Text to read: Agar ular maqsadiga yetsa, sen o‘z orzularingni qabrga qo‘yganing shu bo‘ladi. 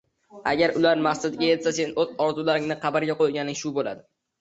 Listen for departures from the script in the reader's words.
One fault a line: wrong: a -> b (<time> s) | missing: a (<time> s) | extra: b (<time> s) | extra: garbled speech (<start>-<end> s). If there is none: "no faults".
no faults